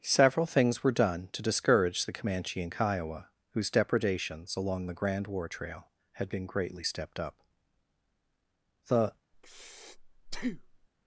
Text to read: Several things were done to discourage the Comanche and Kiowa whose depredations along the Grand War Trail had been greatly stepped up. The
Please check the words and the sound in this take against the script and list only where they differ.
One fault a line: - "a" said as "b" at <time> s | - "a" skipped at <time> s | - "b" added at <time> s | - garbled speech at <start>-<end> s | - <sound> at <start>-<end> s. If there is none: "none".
- breath at 9.3-10.9 s